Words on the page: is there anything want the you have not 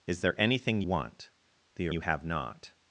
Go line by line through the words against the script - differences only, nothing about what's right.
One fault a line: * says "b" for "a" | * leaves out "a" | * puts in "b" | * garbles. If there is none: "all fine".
all fine